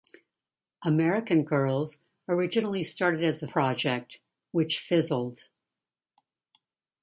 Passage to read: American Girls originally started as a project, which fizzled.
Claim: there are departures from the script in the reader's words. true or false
false